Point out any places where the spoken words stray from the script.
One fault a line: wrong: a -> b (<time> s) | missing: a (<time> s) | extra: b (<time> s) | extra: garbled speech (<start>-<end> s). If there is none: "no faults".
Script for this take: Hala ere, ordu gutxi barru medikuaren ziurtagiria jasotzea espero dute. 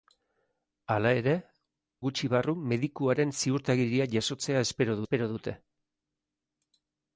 missing: ordu (1.4 s)
extra: espero (5.0 s)